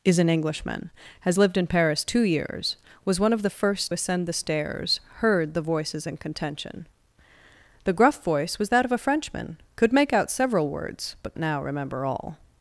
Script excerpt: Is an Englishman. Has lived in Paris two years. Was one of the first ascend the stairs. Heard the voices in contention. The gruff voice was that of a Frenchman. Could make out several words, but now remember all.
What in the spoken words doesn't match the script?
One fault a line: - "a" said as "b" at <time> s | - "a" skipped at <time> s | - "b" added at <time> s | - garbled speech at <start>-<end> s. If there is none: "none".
none